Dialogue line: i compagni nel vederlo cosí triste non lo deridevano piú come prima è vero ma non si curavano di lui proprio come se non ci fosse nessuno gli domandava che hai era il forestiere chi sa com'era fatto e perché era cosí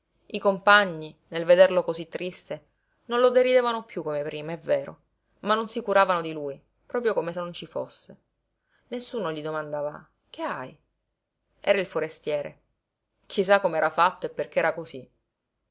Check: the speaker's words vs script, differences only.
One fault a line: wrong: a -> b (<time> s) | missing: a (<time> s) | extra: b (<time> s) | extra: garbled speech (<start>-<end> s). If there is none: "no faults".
no faults